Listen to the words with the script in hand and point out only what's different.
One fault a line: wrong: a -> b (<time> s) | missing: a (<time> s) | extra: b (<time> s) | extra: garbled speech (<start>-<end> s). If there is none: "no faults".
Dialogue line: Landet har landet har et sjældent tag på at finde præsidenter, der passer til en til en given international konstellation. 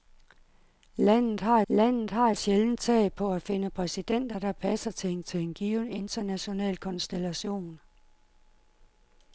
no faults